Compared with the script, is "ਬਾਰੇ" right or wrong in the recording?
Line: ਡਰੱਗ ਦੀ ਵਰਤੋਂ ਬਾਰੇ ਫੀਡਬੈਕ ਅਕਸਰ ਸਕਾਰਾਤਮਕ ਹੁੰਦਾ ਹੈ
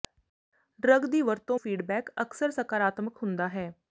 wrong